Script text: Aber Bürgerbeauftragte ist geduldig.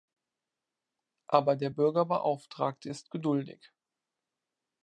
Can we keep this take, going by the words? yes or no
no